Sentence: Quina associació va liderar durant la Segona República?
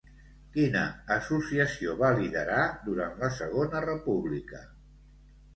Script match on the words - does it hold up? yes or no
yes